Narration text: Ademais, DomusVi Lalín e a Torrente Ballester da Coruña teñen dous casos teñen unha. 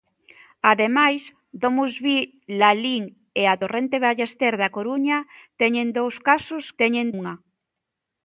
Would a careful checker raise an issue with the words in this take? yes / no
no